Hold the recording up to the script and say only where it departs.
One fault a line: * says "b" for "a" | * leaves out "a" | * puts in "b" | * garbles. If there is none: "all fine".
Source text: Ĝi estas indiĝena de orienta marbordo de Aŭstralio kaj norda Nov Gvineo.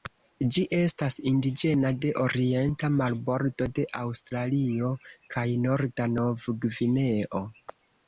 all fine